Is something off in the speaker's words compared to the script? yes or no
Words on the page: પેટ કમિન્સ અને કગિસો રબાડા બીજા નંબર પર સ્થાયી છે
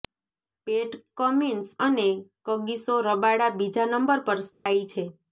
no